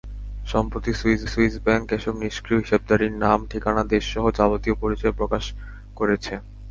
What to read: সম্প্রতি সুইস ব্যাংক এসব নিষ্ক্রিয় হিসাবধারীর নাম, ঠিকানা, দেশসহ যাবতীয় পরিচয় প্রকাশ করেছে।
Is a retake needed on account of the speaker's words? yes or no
yes